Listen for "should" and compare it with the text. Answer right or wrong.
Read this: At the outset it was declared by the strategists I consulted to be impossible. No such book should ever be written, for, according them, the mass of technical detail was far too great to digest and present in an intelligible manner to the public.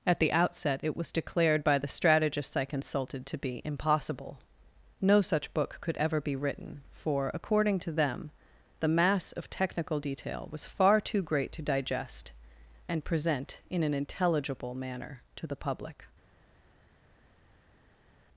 wrong